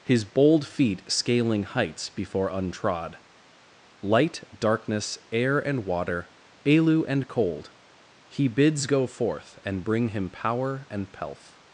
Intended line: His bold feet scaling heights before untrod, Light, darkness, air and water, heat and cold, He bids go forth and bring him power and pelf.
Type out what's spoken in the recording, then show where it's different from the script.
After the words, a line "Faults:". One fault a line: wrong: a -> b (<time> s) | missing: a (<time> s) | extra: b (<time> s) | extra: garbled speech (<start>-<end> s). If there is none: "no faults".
His bold feet scaling heights before untrod, Light, darkness, air and water, elu and cold, He bids go forth and bring him power and pelf.
Faults:
wrong: heat -> elu (6.7 s)